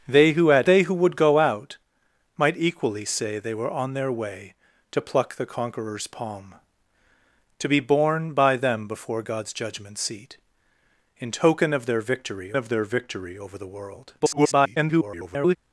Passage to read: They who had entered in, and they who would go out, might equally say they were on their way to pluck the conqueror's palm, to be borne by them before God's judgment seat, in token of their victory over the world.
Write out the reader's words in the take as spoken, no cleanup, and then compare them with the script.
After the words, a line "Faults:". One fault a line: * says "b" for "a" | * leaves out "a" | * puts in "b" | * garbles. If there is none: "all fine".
They who had they who would go out, might equally say they were on their way to pluck the conqueror's palm, to be borne by them before God's judgment seat, in token of their victory of their victory over the world. [garbled]
Faults:
* leaves out "entered in and"
* puts in "of their victory"
* garbles